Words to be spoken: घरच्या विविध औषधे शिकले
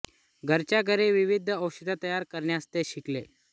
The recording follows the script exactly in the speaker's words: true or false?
false